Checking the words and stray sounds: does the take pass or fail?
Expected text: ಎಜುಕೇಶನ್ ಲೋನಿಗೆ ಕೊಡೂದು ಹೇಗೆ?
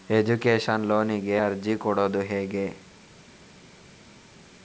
fail